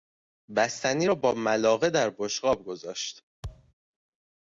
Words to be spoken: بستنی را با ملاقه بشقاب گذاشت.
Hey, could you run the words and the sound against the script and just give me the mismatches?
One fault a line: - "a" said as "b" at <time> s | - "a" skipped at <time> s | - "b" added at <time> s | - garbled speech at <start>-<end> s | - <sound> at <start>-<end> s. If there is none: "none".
- "در" added at 1.9 s
- thud at 3.4-3.7 s